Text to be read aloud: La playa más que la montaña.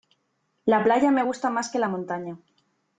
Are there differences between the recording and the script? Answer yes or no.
yes